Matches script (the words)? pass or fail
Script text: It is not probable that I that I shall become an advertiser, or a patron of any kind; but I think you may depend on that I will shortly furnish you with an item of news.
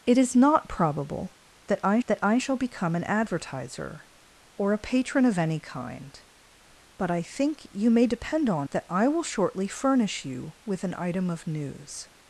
pass